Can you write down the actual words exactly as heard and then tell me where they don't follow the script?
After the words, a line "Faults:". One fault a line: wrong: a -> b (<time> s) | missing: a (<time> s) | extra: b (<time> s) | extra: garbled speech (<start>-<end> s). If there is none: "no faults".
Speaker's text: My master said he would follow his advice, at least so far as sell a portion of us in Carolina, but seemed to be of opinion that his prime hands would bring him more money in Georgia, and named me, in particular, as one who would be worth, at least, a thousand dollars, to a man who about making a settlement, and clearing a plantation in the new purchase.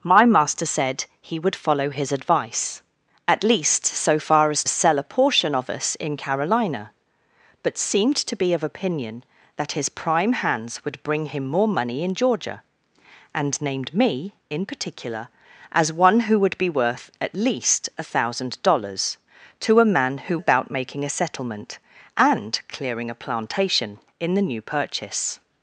My master said he would follow his advice, at least so far as sell a portion of us in Carolina, but seemed to be of opinion that his prime hands would bring him more money in Georgia, and named me, in particular, as one who would be worth, at least, a thousand dollars, to a man who about making a settlement, and clearing a plantation in the new purchase.
Faults:
no faults